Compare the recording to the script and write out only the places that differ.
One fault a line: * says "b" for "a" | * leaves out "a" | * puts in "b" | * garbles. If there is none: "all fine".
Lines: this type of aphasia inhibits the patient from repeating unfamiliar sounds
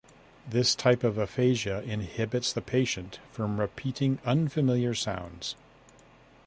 all fine